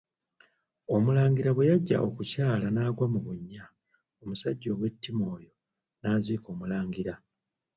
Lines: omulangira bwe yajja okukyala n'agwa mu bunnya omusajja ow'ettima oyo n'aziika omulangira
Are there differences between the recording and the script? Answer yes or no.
no